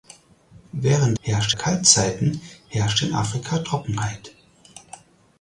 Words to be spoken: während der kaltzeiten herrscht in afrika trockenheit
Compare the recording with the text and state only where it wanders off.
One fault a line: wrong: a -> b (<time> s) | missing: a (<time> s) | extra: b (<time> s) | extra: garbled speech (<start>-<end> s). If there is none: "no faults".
wrong: der -> herrscht (1.2 s)